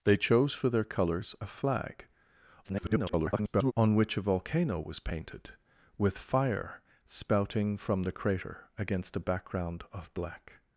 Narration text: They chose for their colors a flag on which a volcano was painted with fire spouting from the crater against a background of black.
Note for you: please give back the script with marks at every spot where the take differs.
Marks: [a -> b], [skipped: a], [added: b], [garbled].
They chose for their colors a flag [garbled] on which a volcano was painted with fire spouting from the crater against a background of black.